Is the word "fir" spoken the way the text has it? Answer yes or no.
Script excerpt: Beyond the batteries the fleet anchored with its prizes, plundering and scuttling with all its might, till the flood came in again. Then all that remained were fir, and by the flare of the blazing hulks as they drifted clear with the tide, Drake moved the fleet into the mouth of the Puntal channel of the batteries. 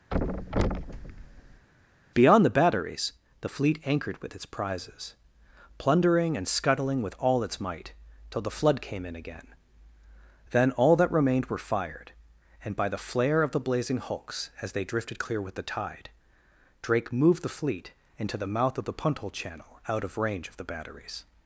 no